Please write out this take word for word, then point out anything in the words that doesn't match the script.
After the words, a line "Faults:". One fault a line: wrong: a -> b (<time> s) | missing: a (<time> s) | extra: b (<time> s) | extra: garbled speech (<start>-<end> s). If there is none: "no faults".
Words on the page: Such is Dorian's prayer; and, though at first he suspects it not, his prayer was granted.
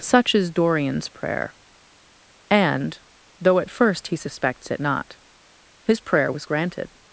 Such is Dorian's prayer; and, though at first he suspects it not, his prayer was granted.
Faults:
no faults